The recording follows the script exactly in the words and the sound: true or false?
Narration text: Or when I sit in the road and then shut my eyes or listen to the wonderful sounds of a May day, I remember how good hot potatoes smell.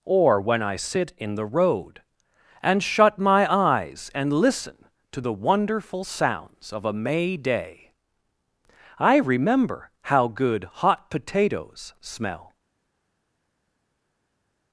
false